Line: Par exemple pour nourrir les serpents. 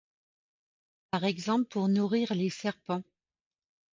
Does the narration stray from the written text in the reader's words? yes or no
no